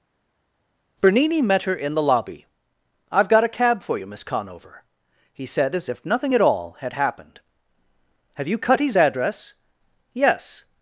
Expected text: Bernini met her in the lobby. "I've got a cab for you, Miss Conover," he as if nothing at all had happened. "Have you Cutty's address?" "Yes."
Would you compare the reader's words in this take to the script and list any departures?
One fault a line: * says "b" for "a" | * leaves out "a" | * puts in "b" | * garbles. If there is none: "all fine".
* puts in "said"